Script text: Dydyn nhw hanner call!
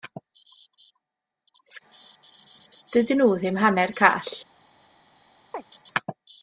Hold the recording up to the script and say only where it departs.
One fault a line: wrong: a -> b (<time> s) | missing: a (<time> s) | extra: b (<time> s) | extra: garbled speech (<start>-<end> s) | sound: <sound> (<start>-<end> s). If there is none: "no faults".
extra: ddim (3.4 s)
sound: chirp (5.5-5.6 s)